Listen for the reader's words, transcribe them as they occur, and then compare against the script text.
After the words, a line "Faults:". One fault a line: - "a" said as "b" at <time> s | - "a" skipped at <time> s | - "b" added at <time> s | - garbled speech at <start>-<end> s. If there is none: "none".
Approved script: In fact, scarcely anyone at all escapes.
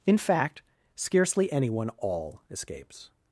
In fact, scarcely anyone all escapes.
Faults:
- "at" skipped at 1.9 s